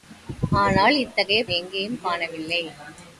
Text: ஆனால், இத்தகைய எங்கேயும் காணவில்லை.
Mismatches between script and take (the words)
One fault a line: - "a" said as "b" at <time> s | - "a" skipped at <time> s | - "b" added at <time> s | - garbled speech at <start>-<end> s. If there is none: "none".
none